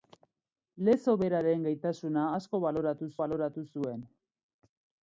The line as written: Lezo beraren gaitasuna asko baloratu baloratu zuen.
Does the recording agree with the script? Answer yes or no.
yes